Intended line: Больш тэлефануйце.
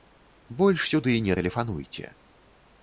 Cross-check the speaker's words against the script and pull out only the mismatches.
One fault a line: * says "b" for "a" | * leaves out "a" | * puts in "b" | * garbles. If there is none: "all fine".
* puts in "сюды не"